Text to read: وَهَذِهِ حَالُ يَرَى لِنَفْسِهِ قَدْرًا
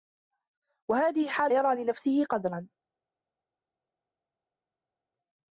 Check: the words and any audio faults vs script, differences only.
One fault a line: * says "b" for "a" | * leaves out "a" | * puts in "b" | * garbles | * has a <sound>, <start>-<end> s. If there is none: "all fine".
all fine